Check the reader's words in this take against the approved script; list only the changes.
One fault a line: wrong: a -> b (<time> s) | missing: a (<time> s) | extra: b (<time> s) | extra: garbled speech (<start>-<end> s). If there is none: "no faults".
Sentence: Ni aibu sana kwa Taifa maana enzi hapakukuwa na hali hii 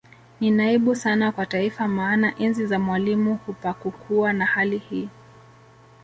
extra: za Mwalimu (2.6 s)